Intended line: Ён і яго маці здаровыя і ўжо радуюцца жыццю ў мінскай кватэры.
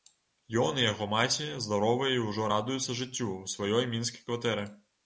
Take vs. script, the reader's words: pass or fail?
fail